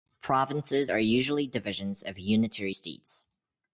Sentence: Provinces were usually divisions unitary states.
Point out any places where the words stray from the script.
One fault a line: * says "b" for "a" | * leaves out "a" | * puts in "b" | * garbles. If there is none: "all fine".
* says "are" for "were"
* puts in "of"